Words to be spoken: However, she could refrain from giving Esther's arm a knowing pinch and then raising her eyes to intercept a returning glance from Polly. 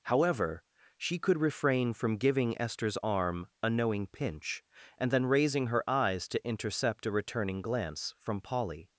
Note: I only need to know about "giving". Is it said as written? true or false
true